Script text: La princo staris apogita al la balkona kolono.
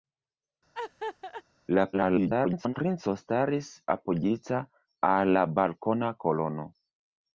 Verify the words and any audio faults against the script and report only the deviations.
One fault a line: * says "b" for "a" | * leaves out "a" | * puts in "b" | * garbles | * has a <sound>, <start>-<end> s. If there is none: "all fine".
* has a laugh, 0.7-1.4 s
* garbles